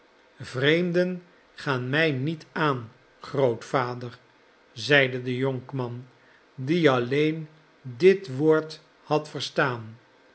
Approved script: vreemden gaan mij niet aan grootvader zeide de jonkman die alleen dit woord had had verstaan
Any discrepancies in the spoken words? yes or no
yes